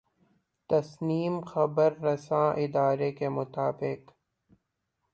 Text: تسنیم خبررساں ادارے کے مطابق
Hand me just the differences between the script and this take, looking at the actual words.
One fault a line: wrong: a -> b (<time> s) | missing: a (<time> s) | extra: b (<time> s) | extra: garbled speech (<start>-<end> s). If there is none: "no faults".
no faults